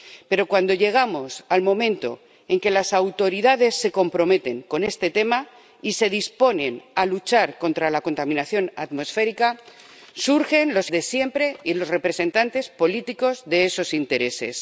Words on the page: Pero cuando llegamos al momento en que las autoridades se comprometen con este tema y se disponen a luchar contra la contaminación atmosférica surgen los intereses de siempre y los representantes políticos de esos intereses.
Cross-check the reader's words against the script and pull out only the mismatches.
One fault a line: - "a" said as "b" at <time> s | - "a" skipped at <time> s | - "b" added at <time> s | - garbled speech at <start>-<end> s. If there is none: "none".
- "intereses" skipped at 10.9 s